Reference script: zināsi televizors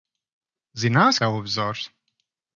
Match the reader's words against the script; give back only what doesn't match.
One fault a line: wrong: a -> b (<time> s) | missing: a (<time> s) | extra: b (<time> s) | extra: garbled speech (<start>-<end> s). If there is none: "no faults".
no faults